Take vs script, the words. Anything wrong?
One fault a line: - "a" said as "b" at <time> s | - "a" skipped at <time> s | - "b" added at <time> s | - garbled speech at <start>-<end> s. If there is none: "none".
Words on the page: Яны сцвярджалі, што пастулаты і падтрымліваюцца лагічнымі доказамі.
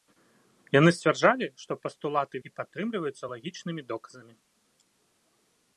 none